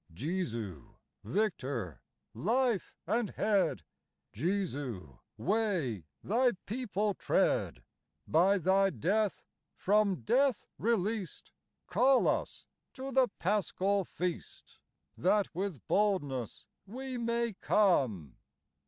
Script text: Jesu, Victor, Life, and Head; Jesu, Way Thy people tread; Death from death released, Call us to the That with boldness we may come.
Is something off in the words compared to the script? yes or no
yes